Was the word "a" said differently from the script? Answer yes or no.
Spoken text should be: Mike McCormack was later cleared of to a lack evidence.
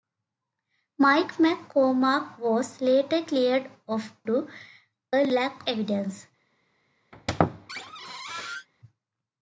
no